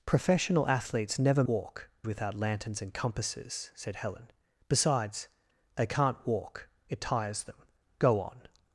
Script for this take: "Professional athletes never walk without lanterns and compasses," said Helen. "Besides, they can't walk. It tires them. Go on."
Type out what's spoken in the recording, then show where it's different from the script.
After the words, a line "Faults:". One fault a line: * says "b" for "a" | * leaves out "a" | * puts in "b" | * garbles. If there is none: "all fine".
"Professional athletes never walk without lanterns and compasses," said Helen. "Besides, they can't walk. It tires them. Go on."
Faults:
all fine